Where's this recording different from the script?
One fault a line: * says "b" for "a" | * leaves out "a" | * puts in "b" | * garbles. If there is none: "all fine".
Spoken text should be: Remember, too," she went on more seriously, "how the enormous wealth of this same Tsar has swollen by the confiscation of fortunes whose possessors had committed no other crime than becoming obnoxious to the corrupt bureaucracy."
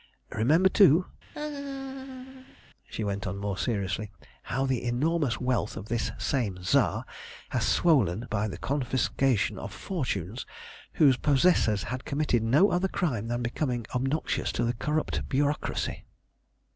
all fine